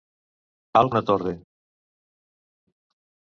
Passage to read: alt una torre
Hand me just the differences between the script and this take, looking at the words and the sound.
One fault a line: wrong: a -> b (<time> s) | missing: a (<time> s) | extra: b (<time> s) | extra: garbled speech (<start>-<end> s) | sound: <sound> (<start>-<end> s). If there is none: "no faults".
no faults